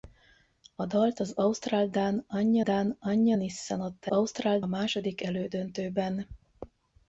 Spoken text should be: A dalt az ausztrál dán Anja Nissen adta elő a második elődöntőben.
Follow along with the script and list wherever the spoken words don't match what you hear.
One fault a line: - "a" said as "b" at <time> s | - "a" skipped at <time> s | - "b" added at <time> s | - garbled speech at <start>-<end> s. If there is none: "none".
- "dán Anja" added at 2.6 s
- "elő" said as "ausztrál" at 4.1 s